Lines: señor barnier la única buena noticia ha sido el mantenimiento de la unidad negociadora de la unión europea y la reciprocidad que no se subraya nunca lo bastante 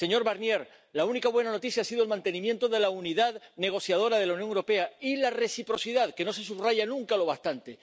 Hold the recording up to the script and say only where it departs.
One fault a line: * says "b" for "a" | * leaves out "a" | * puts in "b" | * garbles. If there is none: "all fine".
all fine